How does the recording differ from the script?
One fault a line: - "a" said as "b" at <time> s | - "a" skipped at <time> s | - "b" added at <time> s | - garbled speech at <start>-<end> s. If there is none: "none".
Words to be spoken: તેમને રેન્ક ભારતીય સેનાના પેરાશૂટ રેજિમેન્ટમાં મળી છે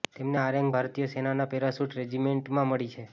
- "આ" added at 0.4 s